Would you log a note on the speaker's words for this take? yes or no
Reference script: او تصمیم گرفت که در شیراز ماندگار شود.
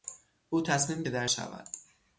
yes